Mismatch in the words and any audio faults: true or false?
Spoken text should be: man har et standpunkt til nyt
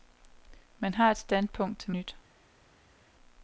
false